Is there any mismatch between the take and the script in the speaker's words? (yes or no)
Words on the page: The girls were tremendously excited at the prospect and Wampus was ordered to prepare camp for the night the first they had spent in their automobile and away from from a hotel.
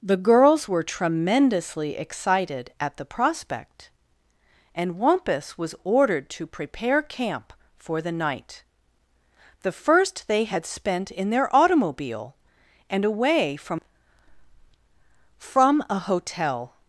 no